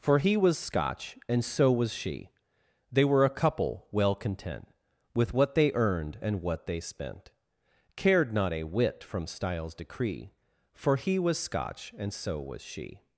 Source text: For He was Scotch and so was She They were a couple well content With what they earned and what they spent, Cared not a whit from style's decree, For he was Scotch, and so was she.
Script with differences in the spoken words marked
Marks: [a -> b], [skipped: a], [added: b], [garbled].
For He was Scotch and so was She They were a couple well content With what they earned and what they spent, Cared not a whit from style's decree, For he was Scotch, and so was she.